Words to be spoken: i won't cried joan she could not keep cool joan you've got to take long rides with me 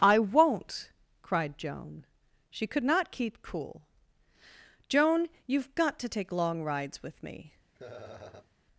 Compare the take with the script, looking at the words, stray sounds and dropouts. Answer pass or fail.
fail